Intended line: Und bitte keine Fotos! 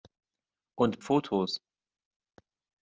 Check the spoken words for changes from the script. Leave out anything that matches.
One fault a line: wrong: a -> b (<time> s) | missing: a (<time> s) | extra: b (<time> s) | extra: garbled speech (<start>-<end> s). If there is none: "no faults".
missing: bitte keine (1.0 s)